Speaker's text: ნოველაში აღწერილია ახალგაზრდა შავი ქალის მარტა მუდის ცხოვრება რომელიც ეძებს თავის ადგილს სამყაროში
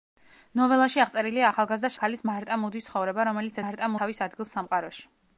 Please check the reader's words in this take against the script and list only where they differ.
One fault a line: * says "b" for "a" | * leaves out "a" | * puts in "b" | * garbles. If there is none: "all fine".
* leaves out "შავი"
* says "მარტა" for "ეძებს"